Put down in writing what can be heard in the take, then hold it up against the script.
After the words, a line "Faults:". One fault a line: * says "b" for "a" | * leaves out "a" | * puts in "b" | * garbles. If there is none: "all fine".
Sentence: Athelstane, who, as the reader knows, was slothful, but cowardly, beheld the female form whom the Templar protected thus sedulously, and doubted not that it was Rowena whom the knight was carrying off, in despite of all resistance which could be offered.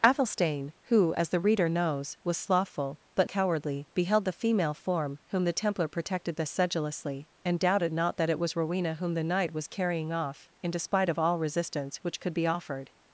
Athelstane, who, as the reader knows, was slothful, but cowardly, beheld the female form whom the Templar protected thus sedulously, and doubted not that it was Rowena whom the knight was carrying off, in despite of all resistance which could be offered.
Faults:
all fine